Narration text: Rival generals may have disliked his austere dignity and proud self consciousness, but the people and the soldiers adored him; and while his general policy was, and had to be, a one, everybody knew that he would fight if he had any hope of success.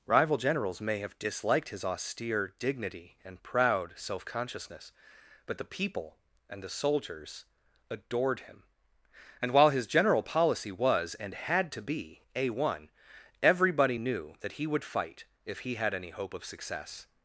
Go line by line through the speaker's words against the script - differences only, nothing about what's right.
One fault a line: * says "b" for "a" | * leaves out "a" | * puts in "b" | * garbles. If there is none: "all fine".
all fine